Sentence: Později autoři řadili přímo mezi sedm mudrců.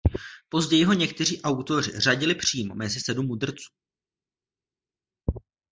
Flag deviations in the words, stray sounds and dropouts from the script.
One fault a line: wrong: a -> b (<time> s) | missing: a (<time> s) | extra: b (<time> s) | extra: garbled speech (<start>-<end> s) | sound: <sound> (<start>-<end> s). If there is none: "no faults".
extra: ho někteří (0.8 s)